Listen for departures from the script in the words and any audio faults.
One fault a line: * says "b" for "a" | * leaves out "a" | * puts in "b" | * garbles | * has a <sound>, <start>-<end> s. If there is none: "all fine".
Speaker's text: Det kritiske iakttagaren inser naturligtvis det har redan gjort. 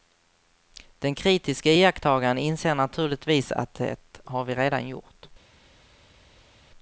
* says "Den" for "Det"
* puts in "att"
* puts in "vi"